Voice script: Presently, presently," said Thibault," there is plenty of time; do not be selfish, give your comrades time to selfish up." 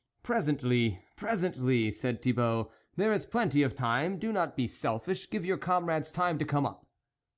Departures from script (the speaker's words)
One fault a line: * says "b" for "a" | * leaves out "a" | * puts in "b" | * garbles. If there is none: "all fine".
* says "come" for "selfish"